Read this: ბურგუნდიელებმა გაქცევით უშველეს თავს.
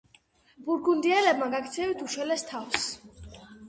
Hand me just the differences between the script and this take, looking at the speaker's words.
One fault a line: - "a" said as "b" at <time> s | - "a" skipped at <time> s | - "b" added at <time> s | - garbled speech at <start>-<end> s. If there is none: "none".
none